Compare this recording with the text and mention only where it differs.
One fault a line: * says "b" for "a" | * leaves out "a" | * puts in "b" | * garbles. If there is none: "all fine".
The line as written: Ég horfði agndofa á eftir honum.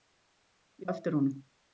* leaves out "horfði agndofa"